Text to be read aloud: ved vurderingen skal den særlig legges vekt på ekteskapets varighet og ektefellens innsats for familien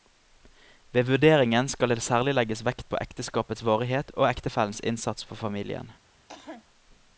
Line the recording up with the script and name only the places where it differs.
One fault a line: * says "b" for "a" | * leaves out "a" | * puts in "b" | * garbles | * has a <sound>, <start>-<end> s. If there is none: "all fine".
* says "det" for "den"
* has a cough, 6.3-6.6 s